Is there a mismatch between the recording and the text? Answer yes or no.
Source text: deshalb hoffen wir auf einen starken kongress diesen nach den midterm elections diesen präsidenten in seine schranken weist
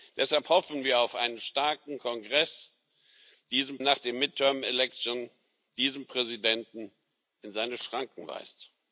no